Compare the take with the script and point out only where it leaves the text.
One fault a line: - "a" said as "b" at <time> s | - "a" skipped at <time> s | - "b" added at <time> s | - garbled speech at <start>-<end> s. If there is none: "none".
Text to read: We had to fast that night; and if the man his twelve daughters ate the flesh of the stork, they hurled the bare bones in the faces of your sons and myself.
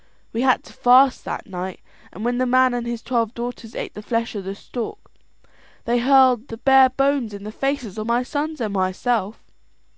- "if" said as "when" at 2.2 s
- "and" added at 2.7 s
- "your" said as "my" at 8.0 s